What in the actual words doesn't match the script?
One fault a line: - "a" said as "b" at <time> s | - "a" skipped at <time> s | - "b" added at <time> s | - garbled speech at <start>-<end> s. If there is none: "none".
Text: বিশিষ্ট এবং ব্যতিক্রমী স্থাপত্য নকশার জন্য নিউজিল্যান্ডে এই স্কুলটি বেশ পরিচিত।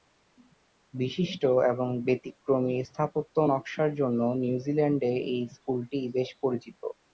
none